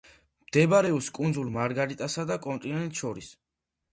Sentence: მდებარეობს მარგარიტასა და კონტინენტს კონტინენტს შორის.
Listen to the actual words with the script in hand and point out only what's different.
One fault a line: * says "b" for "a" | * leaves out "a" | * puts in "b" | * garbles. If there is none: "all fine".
* puts in "კუნძულ"
* leaves out "კონტინენტს"